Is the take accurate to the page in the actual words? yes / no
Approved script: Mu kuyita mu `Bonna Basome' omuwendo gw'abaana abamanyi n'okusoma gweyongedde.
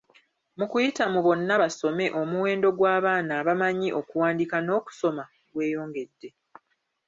no